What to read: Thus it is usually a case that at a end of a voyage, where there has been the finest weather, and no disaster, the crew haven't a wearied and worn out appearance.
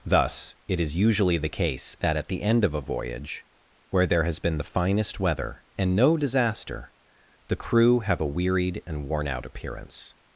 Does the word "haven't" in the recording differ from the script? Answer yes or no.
yes